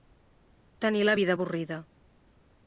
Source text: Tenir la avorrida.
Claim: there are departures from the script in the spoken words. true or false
true